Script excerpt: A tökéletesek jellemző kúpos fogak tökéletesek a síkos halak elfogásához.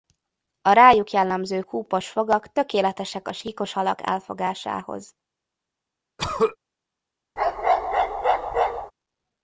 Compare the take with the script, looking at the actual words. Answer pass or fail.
fail